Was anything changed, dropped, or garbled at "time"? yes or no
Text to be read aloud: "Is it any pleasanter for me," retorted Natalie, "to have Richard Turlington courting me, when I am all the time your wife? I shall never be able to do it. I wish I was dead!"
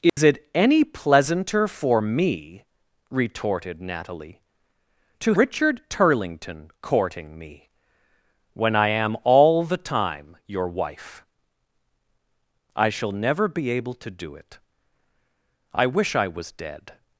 no